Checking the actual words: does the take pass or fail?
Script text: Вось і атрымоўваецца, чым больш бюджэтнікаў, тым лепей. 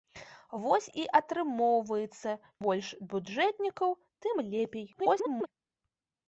fail